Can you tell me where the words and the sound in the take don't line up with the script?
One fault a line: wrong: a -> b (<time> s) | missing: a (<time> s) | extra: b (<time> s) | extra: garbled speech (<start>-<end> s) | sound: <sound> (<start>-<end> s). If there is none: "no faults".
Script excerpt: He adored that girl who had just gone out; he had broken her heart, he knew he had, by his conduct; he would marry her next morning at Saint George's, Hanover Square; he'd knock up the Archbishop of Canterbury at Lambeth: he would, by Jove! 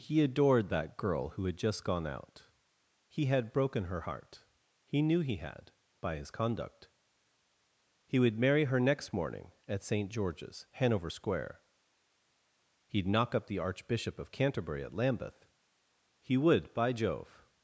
no faults